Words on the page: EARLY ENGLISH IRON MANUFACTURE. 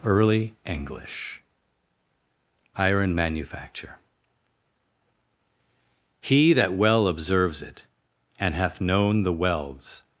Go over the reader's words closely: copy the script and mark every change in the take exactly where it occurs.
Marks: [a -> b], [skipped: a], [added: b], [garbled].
EARLY ENGLISH IRON MANUFACTURE. [added: He that well observes it and hath known the welds]